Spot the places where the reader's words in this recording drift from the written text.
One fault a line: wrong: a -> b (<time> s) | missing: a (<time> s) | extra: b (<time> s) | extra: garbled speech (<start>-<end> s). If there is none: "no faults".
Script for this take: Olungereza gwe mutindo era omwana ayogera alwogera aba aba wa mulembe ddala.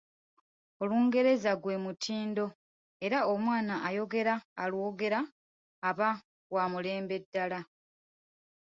missing: aba (6.1 s)